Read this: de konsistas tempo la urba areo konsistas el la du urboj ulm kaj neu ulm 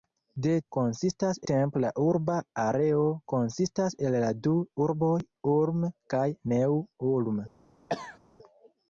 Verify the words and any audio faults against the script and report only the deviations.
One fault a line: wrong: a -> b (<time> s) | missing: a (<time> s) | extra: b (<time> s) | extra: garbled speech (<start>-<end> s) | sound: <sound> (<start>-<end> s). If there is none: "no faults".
sound: cough (7.9-8.2 s)